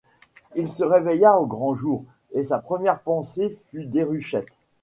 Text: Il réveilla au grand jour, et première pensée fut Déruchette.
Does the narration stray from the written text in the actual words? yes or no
yes